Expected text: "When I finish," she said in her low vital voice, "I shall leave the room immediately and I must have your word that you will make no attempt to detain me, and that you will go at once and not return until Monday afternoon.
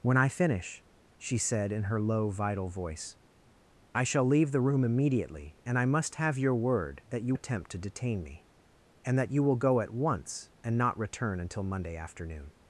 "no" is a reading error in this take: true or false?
true